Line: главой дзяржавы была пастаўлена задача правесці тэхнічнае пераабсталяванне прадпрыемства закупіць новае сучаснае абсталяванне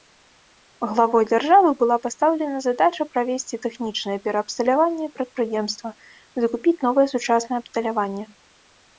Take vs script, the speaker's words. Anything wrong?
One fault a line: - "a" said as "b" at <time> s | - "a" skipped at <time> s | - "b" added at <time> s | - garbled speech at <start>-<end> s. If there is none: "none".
none